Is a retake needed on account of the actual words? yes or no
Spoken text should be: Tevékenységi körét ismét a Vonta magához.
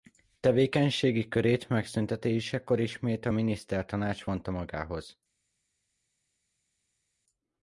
yes